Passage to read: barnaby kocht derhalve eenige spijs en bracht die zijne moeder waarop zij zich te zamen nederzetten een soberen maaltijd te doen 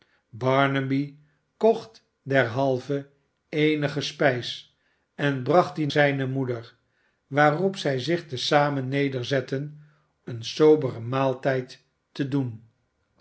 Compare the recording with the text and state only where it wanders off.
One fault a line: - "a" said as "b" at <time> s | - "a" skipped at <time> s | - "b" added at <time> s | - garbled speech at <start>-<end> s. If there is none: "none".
none